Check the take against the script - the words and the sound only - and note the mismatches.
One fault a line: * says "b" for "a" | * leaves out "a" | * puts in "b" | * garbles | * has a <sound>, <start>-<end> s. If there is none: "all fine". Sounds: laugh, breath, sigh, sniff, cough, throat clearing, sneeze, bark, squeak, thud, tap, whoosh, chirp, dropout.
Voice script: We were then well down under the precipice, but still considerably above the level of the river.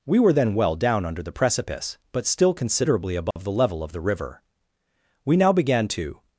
* has a dropout, 3.3-3.4 s
* puts in "We now began to"